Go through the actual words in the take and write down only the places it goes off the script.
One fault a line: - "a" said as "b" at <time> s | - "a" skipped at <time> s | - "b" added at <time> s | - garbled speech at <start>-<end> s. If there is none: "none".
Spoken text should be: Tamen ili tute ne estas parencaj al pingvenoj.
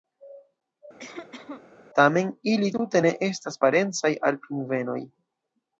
none